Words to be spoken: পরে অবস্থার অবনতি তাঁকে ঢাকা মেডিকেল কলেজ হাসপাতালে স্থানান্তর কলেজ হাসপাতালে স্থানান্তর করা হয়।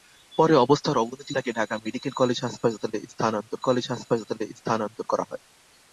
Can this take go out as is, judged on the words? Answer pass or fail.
pass